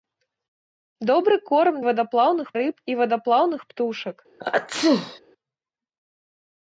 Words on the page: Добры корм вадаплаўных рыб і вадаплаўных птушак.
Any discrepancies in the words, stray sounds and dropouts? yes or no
yes